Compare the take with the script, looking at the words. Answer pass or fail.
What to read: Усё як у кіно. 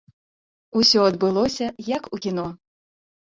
fail